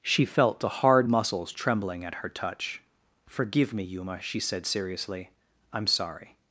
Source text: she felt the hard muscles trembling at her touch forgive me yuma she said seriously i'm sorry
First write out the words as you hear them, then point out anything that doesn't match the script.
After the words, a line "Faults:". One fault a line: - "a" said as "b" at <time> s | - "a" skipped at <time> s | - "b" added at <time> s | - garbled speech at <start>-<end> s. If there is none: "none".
she felt the hard muscles trembling at her touch forgive me yuma she said seriously i'm sorry
Faults:
none